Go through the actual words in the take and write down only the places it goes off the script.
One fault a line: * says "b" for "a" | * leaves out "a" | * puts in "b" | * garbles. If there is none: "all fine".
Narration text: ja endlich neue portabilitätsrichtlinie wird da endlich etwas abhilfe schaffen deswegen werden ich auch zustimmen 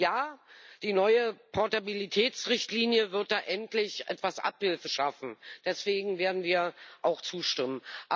* says "die" for "endlich"
* says "wir" for "ich"